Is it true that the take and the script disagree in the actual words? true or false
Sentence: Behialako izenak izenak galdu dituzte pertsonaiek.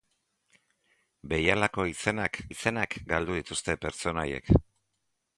false